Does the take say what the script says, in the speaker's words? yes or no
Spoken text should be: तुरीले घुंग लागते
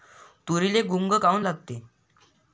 no